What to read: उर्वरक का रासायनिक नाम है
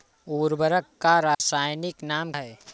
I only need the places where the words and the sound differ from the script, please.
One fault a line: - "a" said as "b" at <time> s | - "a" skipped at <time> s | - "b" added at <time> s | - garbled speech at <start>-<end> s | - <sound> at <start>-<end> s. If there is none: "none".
- dropout at 1.3-1.4 s